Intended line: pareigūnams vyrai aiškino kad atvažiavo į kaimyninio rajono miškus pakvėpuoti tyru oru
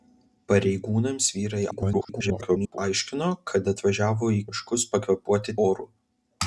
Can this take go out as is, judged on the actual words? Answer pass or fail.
fail